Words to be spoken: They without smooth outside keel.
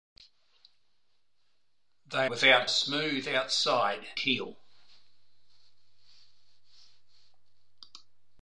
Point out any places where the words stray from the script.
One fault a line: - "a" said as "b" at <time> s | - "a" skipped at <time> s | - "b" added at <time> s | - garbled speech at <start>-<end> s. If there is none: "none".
none